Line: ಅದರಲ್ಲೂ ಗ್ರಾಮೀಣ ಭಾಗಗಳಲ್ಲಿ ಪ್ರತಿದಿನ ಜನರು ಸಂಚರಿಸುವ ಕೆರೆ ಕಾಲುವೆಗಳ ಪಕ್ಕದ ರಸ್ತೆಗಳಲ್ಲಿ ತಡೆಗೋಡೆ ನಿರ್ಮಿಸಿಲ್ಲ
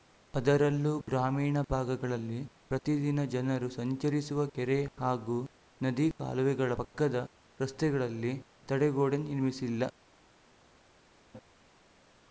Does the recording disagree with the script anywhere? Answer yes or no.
yes